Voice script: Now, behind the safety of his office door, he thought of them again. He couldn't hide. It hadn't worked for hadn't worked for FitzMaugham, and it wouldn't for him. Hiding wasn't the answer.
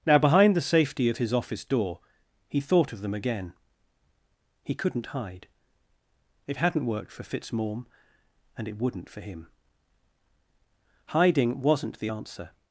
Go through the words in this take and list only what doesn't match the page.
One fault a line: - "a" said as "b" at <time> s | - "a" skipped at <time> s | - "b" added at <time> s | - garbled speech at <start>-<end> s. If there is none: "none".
- "hadn't worked for" skipped at 7.2 s